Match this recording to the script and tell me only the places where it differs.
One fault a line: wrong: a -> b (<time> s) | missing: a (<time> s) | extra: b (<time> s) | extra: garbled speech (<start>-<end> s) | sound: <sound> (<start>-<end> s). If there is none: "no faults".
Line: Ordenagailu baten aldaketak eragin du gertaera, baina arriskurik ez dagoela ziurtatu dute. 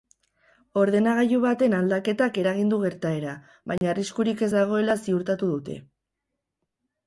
sound: dropout (3.8-3.8 s)